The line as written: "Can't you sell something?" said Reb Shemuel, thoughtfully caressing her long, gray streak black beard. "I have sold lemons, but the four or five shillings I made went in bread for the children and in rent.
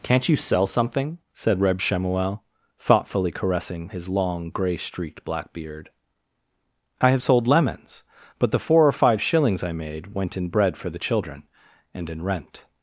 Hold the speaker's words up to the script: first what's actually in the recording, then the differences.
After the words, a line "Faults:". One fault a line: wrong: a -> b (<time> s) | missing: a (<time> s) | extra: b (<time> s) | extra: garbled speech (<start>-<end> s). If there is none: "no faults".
"Can't you sell something?" said Reb Shemuel, thoughtfully caressing his long, gray streaked black beard. "I have sold lemons, but the four or five shillings I made went in bread for the children and in rent.
Faults:
wrong: her -> his (3.9 s)
wrong: streak -> streaked (4.8 s)